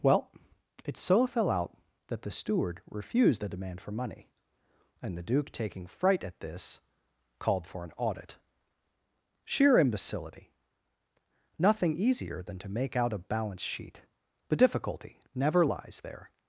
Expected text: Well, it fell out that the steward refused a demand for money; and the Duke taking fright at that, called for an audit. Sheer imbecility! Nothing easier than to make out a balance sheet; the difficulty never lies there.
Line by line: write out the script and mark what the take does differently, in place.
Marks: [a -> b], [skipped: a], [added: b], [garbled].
Well, it [added: so] fell out that the steward refused a demand for money; and the Duke taking fright at [that, -> this] called for an audit. Sheer imbecility! Nothing easier than to make out a balance sheet; the difficulty never lies there.